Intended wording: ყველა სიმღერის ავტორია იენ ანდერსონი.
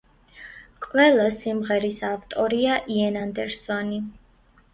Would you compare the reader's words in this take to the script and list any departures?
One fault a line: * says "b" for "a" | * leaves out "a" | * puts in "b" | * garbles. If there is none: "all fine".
all fine